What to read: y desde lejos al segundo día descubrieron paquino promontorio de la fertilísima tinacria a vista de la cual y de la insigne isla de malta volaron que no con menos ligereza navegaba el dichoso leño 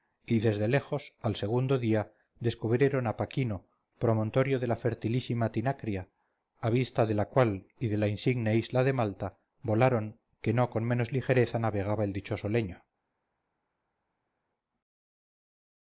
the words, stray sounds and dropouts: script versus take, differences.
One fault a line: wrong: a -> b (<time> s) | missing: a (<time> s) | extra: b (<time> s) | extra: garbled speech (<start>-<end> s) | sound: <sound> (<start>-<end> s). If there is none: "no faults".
extra: a (3.0 s)